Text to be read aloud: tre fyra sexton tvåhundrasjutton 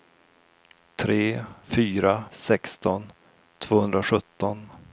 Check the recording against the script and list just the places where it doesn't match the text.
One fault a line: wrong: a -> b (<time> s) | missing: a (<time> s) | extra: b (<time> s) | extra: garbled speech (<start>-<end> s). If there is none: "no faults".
no faults